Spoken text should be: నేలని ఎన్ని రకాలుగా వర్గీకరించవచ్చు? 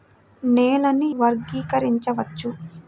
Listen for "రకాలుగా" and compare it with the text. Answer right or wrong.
wrong